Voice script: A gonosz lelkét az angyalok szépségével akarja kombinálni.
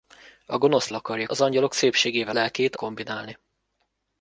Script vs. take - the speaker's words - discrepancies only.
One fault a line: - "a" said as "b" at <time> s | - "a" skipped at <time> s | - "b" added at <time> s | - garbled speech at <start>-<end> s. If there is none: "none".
- "lelkét" said as "akarja" at 0.9 s
- "akarja" said as "lelkét" at 2.3 s